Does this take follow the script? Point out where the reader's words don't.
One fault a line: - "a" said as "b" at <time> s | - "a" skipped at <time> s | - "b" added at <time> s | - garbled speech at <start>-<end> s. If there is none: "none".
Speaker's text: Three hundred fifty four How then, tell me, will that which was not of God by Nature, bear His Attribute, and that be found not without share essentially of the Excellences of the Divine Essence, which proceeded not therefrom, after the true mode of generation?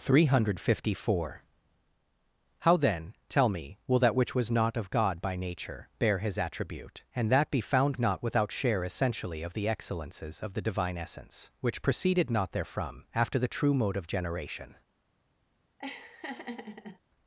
none